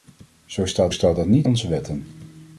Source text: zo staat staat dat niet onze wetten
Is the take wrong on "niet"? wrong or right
right